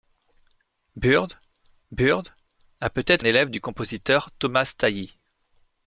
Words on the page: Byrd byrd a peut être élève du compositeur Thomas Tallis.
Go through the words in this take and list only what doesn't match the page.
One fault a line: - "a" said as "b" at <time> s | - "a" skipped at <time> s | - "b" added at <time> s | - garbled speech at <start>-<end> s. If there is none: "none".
none